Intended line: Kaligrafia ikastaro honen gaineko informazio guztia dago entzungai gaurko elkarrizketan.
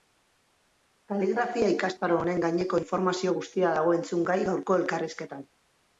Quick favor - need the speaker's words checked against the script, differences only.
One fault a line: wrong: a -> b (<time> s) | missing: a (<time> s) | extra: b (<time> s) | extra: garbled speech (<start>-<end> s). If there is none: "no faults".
no faults